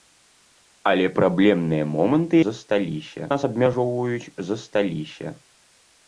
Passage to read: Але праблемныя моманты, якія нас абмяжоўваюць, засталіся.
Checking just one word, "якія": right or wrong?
wrong